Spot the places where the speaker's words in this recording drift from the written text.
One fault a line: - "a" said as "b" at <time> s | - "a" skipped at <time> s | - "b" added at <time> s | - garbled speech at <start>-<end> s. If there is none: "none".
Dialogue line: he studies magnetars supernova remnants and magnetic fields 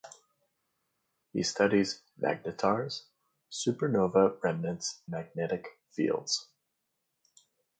- "and" skipped at 5.1 s